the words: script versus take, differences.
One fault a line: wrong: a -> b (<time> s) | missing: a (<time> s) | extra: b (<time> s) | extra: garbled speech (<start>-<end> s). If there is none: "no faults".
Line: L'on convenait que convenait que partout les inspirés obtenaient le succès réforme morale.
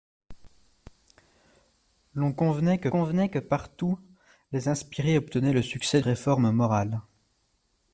no faults